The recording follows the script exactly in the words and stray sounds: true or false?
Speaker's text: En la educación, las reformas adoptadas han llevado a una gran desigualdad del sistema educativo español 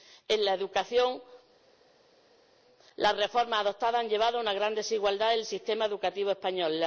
true